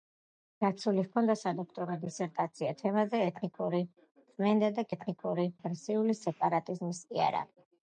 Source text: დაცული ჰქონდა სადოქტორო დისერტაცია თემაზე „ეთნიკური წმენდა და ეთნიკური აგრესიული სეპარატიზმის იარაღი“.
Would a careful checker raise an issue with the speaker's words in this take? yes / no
no